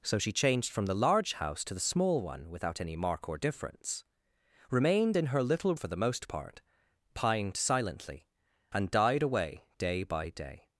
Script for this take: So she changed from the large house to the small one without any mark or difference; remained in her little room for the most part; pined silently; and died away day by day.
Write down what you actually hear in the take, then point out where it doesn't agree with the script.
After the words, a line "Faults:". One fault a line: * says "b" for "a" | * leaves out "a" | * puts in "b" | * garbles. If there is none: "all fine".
So she changed from the large house to the small one without any mark or difference; remained in her little for the most part; pined silently; and died away day by day.
Faults:
* leaves out "room"